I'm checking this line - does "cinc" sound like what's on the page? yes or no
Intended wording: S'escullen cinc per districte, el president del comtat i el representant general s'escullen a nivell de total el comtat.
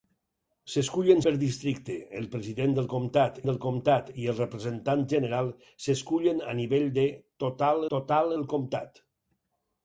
no